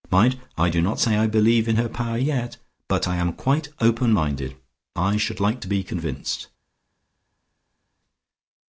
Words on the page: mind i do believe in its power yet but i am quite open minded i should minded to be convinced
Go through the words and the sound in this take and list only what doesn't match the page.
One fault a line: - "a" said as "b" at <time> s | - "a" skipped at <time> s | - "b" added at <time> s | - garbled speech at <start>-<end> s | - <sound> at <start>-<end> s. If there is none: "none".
- "not say i" added at 0.8 s
- "its" said as "her" at 1.7 s
- "minded" said as "like" at 5.4 s